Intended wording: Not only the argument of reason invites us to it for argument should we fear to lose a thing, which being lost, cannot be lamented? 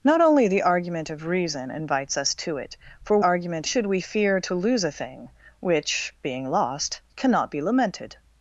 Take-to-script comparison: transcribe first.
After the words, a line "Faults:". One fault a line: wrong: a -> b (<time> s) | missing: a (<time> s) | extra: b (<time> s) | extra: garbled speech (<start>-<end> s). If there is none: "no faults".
Not only the argument of reason invites us to it for argument should we fear to lose a thing, which being lost, cannot be lamented?
Faults:
no faults